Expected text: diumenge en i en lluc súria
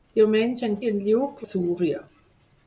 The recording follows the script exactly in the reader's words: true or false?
true